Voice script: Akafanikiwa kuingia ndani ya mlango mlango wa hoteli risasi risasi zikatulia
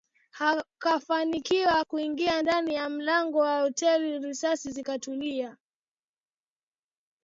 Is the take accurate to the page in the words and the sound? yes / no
no